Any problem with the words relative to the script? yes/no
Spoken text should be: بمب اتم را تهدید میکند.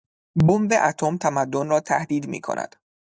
yes